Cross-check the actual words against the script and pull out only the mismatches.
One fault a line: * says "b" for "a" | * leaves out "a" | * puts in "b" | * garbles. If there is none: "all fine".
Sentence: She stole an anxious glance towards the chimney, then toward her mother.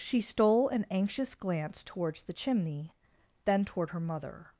all fine